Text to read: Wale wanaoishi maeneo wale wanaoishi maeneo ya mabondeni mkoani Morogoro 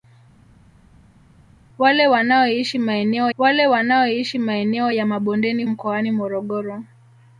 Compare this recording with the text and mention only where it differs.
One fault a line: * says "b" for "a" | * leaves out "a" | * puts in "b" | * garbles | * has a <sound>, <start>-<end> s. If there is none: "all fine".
all fine